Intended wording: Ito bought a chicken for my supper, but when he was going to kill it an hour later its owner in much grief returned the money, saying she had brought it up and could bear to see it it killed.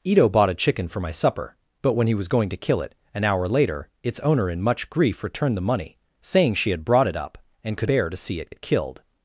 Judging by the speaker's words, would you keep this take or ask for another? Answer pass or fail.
pass